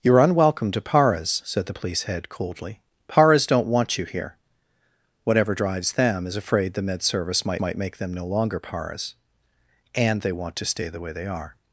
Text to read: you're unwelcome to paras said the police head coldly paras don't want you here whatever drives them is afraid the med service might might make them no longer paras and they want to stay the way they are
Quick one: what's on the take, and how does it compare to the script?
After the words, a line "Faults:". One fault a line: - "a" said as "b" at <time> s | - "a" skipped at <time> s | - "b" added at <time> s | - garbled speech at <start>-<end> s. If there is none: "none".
you're unwelcome to paras said the police head coldly paras don't want you here whatever drives them is afraid the med service might might make them no longer paras and they want to stay the way they are
Faults:
none